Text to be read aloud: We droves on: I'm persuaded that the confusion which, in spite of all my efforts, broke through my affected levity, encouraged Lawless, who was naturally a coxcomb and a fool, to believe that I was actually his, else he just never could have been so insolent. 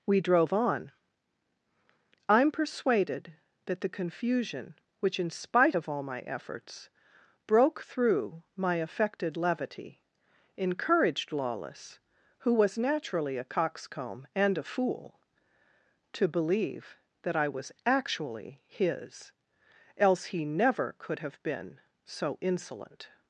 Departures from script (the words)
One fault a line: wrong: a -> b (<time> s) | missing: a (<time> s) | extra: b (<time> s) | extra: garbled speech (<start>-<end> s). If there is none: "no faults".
wrong: droves -> drove (0.2 s)
missing: just (20.5 s)